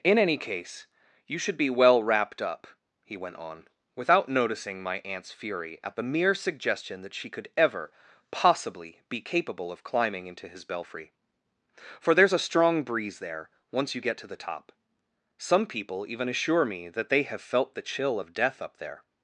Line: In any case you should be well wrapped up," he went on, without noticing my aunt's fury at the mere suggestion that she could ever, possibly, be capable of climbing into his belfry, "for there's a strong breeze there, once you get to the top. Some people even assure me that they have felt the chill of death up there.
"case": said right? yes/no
yes